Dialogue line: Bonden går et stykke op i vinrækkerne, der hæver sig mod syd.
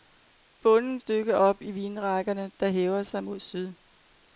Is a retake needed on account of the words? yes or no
yes